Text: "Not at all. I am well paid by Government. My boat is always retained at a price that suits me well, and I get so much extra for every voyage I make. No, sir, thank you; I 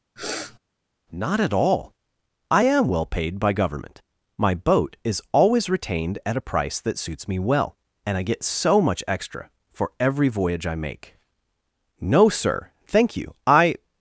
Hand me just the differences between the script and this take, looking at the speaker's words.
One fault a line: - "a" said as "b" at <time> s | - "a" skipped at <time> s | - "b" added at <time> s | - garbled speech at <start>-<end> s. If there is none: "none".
none